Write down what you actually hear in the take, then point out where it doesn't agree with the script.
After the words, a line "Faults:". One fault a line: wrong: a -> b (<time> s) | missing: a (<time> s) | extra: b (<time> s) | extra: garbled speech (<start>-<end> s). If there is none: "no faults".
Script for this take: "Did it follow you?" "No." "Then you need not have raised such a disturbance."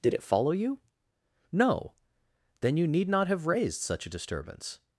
"Did it follow you?" "No." "Then you need not have raised such a disturbance."
Faults:
no faults